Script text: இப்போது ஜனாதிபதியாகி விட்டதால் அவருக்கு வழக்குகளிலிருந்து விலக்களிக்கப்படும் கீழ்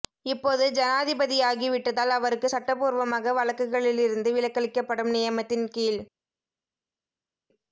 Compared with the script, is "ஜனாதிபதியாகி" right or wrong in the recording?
right